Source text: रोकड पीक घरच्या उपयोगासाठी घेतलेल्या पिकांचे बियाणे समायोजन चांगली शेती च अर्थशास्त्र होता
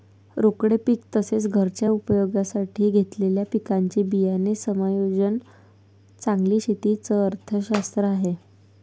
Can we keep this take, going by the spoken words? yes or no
no